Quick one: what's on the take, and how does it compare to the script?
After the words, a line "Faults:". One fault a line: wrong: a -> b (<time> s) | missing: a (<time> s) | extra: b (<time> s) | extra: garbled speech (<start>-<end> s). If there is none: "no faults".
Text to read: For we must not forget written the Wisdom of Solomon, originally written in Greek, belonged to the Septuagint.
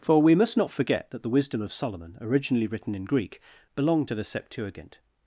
For we must not forget that the Wisdom of Solomon, originally written in Greek, belonged to the Septuagint.
Faults:
wrong: written -> that (1.1 s)